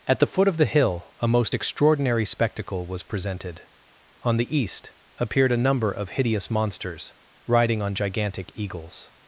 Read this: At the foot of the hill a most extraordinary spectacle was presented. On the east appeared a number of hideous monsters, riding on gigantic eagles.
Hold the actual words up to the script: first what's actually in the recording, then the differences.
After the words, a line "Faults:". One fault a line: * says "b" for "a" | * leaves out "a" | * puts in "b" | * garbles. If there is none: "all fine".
At the foot of the hill a most extraordinary spectacle was presented. On the east appeared a number of hideous monsters, riding on gigantic eagles.
Faults:
all fine